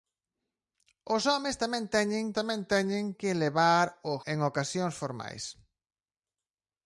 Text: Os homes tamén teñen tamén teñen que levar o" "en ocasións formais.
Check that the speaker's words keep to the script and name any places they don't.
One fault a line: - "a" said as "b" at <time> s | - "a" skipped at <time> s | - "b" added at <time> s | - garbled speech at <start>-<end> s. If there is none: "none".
none